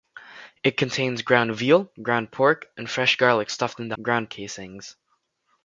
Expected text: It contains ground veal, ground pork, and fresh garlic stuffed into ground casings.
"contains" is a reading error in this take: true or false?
false